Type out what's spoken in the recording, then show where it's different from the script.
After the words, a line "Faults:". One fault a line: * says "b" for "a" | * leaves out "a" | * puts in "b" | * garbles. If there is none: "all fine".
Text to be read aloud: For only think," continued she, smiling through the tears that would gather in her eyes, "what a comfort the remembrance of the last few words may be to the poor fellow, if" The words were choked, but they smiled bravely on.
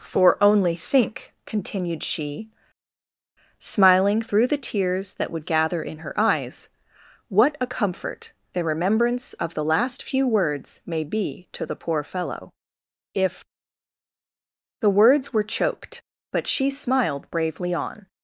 For only think," continued she, smiling through the tears that would gather in her eyes, "what a comfort the remembrance of the last few words may be to the poor fellow, if" The words were choked, but she smiled bravely on.
Faults:
* says "she" for "they"